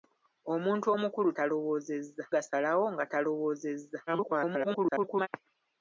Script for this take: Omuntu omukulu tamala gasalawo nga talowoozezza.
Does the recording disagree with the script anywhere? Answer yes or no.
yes